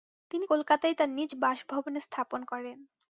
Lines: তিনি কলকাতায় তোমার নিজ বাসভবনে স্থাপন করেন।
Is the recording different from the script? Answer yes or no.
yes